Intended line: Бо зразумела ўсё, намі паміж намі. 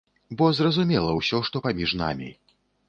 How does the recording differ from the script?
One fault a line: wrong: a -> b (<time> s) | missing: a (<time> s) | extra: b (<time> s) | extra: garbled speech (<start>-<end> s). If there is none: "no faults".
wrong: намі -> што (1.5 s)